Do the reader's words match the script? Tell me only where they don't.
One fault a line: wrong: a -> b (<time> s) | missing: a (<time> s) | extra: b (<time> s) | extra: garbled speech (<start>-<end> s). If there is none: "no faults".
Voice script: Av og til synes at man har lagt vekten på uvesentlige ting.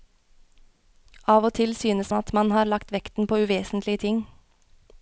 no faults